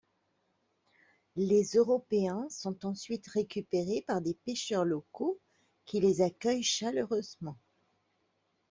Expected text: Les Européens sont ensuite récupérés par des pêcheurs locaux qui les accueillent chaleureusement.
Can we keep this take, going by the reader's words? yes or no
yes